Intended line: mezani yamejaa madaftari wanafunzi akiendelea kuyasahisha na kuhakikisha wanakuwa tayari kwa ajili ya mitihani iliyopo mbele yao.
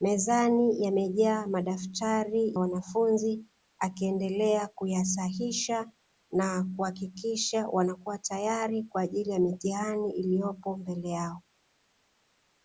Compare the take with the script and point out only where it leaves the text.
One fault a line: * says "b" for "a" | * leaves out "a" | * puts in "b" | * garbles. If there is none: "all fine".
all fine